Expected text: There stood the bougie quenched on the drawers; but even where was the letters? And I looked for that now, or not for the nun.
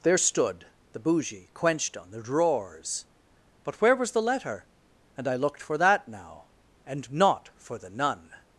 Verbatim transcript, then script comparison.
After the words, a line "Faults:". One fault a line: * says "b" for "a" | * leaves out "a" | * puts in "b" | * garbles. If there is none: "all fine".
There stood the bougie quenched on the drawers; but where was the letter? And I looked for that now, and not for the nun.
Faults:
* leaves out "even"
* says "letter" for "letters"
* says "and" for "or"